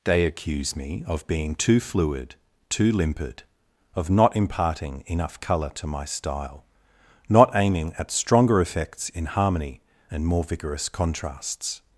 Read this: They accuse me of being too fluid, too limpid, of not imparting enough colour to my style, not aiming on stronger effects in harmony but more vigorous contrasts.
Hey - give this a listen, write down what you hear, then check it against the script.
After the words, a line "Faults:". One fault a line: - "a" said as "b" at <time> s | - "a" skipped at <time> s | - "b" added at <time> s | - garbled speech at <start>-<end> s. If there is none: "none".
They accuse me of being too fluid, too limpid, of not imparting enough colour to my style, not aiming at stronger effects in harmony and more vigorous contrasts.
Faults:
- "on" said as "at" at 8.0 s
- "but" said as "and" at 10.1 s